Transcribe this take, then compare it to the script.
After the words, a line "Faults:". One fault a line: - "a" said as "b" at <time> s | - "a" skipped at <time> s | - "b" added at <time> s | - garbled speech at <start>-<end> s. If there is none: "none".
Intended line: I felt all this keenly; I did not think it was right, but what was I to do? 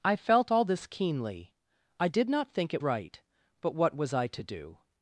I felt all this keenly; I did not think it right, but what was I to do?
Faults:
- "was" skipped at 2.8 s